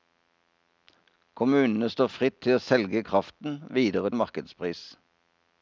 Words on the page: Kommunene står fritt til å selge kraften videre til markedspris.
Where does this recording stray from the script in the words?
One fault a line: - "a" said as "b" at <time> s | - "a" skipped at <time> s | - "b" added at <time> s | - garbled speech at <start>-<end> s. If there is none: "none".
- "til" skipped at 4.1 s